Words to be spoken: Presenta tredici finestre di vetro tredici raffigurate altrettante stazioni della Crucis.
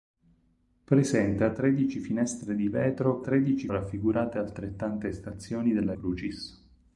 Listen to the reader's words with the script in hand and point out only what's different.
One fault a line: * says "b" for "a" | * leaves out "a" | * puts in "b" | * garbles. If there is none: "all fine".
all fine